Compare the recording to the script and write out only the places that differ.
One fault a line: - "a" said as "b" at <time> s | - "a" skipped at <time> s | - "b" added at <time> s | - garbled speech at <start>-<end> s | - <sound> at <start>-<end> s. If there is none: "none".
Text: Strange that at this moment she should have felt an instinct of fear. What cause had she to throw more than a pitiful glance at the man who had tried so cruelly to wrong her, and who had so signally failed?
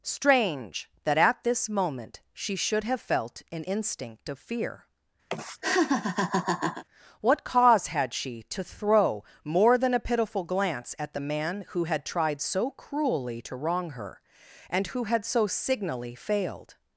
- laugh at 5.3-6.8 s